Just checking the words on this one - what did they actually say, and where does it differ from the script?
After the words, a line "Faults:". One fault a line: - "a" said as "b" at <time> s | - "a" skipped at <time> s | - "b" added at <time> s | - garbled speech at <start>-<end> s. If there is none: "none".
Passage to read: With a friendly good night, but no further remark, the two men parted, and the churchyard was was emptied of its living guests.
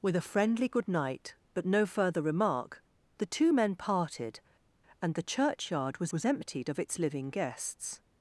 With a friendly good night, but no further remark, the two men parted, and the churchyard was was emptied of its living guests.
Faults:
none